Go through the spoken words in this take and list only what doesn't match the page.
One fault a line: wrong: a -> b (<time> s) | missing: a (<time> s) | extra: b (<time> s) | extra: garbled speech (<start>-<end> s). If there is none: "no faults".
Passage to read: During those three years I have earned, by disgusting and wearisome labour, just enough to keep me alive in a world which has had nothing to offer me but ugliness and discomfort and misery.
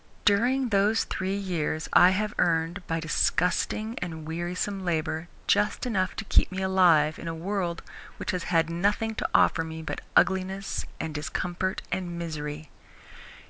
no faults